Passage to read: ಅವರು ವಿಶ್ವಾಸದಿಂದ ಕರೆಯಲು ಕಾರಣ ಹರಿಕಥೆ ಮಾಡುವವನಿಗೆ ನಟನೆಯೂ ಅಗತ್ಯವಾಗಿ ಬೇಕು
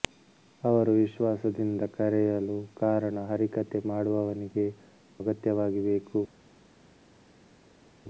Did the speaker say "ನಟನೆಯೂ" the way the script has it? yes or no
no